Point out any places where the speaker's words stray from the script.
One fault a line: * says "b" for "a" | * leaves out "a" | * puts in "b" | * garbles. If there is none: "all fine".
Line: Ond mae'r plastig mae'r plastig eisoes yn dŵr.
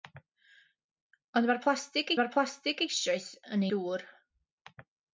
all fine